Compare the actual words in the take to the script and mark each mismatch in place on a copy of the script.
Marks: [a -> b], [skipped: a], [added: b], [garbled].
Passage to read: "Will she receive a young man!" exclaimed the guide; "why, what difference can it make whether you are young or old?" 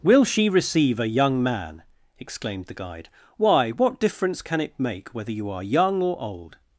"Will she receive a young man!" exclaimed the guide; "why, what difference can it make whether you are young or old?"